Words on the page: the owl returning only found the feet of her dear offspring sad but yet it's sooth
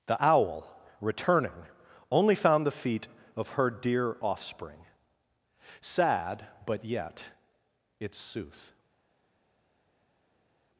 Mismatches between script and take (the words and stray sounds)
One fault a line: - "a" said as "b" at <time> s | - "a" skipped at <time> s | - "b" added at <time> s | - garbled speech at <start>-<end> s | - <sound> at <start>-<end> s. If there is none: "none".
none